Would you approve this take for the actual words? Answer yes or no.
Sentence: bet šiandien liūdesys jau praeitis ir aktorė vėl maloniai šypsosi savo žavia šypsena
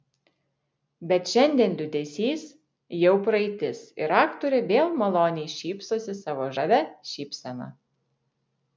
yes